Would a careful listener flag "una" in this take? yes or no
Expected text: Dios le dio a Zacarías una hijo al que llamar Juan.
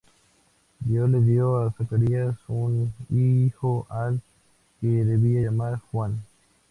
yes